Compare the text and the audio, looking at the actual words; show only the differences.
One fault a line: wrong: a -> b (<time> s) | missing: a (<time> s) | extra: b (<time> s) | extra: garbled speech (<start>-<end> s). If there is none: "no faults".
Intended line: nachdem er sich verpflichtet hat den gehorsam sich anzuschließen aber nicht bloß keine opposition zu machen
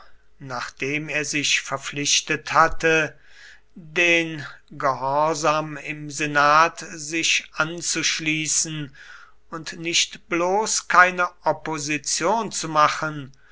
wrong: hat -> hatte (2.5 s)
extra: im senat (5.8 s)
wrong: aber -> und (9.5 s)